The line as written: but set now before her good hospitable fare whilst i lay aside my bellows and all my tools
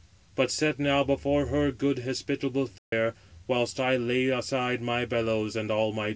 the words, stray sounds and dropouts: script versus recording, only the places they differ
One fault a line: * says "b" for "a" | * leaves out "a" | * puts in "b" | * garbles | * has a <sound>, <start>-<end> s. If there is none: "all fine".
* has a dropout, 2.8-2.9 s